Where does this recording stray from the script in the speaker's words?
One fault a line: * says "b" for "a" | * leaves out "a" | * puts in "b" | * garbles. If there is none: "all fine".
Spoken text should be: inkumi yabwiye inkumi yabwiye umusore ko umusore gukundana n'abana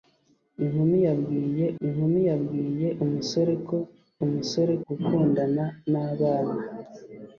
all fine